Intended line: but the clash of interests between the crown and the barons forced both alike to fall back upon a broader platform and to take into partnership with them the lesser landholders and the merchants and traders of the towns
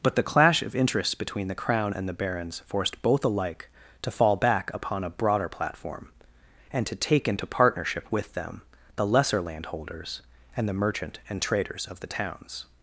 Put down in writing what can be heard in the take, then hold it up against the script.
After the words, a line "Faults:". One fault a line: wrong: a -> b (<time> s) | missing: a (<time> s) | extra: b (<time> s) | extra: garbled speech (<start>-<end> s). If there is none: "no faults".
but the clash of interests between the crown and the barons forced both alike to fall back upon a broader platform and to take into partnership with them the lesser landholders and the merchant and traders of the towns
Faults:
wrong: merchants -> merchant (10.7 s)